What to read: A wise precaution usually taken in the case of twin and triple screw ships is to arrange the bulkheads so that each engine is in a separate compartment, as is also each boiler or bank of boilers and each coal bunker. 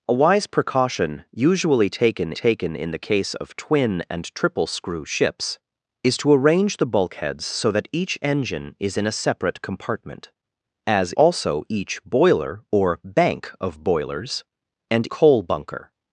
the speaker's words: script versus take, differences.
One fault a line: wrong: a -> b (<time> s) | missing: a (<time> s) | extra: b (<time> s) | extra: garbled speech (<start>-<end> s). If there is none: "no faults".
extra: taken (2.3 s)
missing: is (11.1 s)
missing: each (15.1 s)